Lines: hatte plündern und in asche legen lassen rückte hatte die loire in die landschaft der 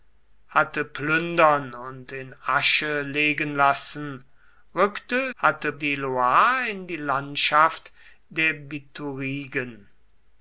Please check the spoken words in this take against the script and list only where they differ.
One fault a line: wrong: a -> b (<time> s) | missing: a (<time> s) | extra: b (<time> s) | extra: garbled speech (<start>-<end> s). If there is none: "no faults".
no faults